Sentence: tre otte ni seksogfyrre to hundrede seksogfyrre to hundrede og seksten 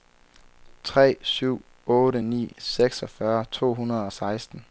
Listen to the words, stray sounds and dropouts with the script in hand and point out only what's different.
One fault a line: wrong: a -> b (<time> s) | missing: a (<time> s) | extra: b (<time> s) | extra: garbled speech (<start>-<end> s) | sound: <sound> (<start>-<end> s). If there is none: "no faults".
extra: syv (1.2 s)
missing: seksogfyrre to hundrede (4.1 s)